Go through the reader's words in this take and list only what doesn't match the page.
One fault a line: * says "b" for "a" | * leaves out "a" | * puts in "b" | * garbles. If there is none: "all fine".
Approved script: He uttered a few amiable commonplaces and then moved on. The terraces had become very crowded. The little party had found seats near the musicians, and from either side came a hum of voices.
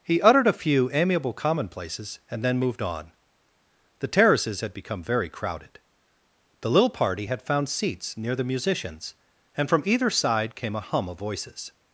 all fine